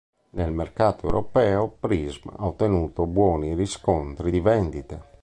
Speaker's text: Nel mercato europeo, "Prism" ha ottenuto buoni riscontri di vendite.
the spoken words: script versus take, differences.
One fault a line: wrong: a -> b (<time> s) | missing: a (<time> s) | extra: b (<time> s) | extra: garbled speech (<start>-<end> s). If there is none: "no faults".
no faults